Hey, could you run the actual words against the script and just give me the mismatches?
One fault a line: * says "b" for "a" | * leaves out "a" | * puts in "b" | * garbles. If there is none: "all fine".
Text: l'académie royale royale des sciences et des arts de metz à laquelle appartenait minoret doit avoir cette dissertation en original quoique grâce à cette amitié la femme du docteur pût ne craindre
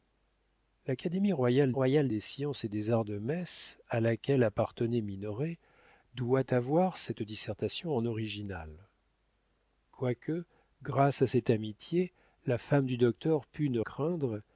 all fine